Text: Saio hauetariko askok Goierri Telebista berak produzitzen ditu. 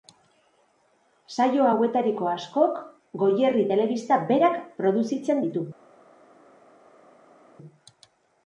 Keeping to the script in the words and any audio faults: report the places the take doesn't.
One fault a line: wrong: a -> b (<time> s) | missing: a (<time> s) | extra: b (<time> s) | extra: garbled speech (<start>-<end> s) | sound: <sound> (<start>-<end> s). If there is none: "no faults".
no faults